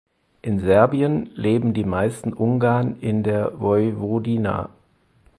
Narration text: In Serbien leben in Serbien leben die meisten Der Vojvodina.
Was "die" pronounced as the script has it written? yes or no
no